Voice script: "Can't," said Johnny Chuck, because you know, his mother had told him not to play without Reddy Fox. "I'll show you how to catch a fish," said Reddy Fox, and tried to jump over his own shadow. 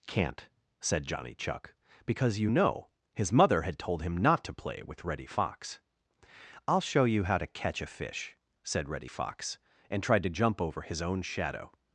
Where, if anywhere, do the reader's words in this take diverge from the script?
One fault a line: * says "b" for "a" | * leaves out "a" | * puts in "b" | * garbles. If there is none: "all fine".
* says "with" for "without"